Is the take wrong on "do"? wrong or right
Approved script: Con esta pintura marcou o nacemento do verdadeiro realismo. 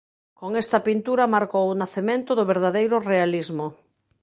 right